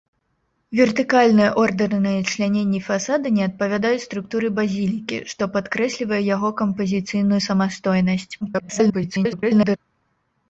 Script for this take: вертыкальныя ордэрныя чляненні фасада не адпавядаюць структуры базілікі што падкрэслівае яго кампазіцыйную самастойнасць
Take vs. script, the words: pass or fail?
fail